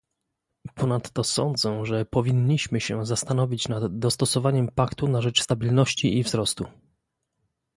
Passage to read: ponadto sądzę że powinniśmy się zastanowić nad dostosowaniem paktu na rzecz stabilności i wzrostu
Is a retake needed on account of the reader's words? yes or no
no